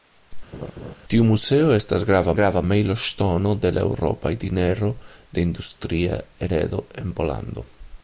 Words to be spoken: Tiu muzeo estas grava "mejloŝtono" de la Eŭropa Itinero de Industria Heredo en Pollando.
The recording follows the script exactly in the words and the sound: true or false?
false